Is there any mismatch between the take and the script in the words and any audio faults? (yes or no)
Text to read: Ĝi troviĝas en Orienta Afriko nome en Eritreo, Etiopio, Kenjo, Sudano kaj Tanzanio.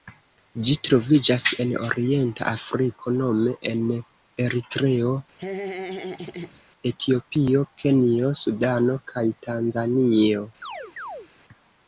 yes